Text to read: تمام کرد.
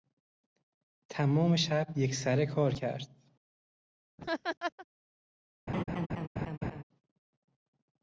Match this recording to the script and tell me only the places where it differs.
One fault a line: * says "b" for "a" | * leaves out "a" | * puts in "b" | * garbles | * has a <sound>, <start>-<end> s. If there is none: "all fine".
* puts in "شب یکسره کار"
* has a laugh, 4.2-4.9 s
* has a laugh, 5.7-6.8 s